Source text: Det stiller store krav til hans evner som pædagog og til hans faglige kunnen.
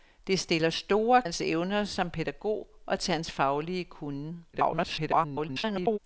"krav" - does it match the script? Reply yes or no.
no